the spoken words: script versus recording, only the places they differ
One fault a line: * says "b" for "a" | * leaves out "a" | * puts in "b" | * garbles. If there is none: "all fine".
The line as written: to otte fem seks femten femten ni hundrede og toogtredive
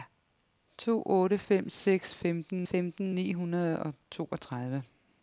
all fine